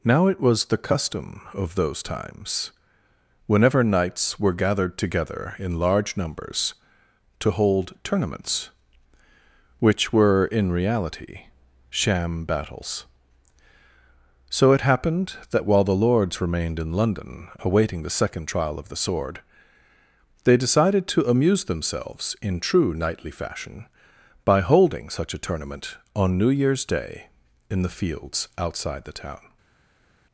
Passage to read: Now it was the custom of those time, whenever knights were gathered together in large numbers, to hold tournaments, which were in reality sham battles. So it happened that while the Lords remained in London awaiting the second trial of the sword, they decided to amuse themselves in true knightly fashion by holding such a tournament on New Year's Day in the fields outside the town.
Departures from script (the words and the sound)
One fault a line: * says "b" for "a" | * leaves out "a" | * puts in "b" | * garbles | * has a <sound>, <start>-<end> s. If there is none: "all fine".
* says "times" for "time"